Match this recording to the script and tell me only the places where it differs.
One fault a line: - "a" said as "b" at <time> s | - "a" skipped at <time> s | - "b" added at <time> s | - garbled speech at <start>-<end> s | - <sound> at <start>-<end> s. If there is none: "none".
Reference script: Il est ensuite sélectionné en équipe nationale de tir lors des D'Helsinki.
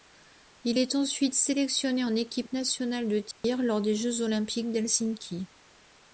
- dropout at 3.3-3.4 s
- "Jeux olympiques" added at 3.9 s